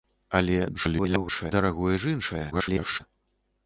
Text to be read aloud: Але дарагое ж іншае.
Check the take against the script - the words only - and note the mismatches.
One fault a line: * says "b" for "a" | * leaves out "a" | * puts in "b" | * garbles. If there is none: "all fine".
* garbles
* garbles